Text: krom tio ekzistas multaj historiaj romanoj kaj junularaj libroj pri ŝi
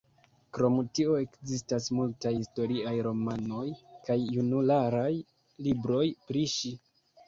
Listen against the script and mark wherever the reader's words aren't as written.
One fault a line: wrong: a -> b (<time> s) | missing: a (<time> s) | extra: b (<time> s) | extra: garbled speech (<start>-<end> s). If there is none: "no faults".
no faults